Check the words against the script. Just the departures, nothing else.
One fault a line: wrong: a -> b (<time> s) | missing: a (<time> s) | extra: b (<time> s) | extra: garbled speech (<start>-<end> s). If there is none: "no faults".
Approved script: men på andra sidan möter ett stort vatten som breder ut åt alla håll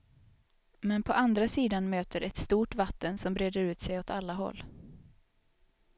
extra: sig (3.8 s)